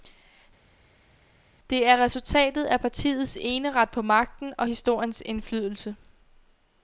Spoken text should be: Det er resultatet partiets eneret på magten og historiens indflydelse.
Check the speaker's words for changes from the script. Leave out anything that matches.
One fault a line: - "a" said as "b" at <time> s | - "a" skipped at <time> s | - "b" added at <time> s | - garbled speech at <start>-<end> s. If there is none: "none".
- "af" added at 2.6 s